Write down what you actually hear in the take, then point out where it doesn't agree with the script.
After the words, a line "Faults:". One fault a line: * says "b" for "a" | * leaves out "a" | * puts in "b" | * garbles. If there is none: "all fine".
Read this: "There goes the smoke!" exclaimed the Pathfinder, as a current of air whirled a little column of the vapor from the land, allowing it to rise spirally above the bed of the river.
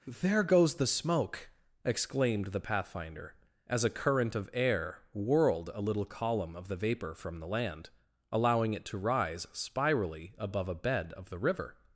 "There goes the smoke!" exclaimed the Pathfinder, as a current of air whirled a little column of the vapor from the land, allowing it to rise spirally above a bed of the river.
Faults:
* says "a" for "the"